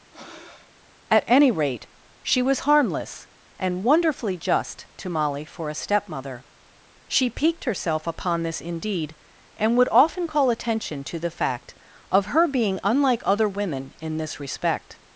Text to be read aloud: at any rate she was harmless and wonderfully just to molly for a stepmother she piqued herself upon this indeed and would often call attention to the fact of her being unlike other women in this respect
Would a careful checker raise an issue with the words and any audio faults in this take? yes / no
yes